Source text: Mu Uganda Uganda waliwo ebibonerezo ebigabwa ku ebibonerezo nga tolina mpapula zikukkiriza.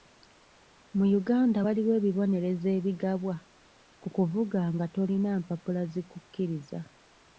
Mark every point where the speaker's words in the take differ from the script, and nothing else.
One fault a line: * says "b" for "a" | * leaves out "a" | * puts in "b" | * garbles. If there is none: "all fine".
* leaves out "Uganda"
* says "kuvuga" for "ebibonerezo"